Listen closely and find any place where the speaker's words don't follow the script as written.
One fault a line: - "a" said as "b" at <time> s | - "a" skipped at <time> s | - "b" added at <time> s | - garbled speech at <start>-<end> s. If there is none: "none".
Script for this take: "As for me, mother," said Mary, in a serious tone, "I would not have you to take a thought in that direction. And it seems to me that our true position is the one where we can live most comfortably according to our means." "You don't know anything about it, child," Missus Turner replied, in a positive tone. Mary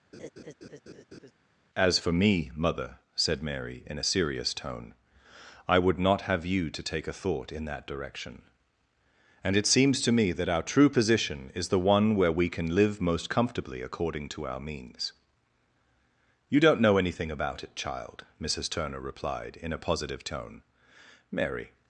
none